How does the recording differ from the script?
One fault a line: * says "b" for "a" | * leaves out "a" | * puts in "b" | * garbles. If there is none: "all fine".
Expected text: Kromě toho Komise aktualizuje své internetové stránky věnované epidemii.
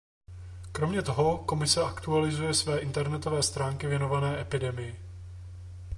all fine